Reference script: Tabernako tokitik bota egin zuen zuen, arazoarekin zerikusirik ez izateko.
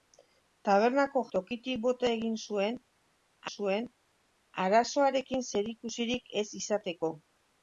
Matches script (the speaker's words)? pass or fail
pass